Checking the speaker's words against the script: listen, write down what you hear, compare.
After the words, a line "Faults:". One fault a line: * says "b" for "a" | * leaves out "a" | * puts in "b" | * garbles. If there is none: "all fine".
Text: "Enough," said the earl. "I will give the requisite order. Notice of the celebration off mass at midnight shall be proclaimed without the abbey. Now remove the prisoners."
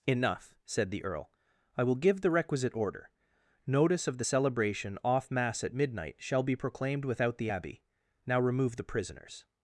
"Enough," said the earl. "I will give the requisite order. Notice of the celebration off mass at midnight shall be proclaimed without the abbey. Now remove the prisoners."
Faults:
all fine